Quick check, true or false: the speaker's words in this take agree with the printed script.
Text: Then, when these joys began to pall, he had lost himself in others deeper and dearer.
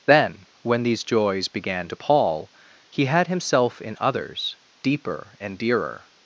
false